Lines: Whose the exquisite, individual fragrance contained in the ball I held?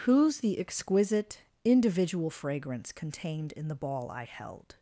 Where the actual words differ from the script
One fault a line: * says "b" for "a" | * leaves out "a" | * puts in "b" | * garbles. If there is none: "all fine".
all fine